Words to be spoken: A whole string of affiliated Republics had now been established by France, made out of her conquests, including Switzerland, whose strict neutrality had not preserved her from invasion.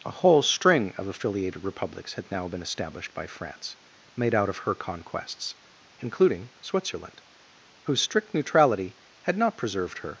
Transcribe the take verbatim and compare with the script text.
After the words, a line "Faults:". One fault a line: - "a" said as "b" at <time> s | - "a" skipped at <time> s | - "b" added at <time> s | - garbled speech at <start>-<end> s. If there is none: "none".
A whole string of affiliated Republics had now been established by France, made out of her conquests, including Switzerland, whose strict neutrality had not preserved her.
Faults:
- "from invasion" skipped at 10.1 s